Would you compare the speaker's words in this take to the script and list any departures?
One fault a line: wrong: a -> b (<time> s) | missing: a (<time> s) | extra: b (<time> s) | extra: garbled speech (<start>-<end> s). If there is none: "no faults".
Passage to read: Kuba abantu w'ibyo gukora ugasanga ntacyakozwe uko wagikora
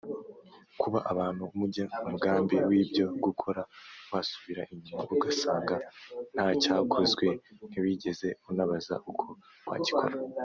extra: mujya umugambi (1.6 s)
extra: wasubira inyuma (4.1 s)
extra: ntiwigeze unabaza (7.7 s)